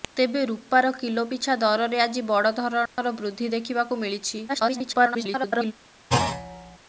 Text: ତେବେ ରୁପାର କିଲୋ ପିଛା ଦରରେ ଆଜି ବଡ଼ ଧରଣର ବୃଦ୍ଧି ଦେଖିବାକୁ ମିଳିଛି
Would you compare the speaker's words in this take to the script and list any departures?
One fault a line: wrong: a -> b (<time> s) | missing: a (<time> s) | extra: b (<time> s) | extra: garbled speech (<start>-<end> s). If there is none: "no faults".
extra: garbled speech (4.5-5.7 s)